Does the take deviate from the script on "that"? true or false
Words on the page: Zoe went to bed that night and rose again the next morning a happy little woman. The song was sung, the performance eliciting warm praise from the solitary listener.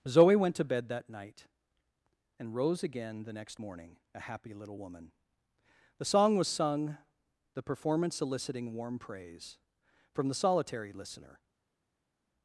false